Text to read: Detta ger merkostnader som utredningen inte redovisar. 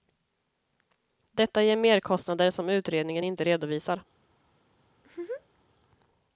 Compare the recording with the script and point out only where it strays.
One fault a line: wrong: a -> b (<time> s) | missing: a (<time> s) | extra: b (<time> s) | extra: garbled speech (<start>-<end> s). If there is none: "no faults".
no faults